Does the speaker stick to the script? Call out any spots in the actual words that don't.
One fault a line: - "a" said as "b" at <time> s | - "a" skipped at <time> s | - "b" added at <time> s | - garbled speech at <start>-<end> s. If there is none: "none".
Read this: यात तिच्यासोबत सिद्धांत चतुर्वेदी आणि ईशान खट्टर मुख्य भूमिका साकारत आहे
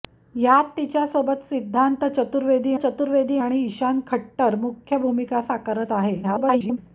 - "चतुर्वेदी" added at 2.7 s
- garbled speech at 6.2-6.8 s